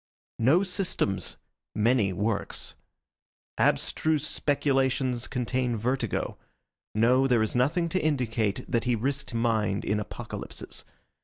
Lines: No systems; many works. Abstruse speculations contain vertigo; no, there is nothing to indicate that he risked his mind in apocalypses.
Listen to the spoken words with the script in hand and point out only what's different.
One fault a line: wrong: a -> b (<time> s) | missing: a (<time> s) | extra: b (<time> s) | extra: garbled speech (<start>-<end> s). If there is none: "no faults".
missing: his (9.3 s)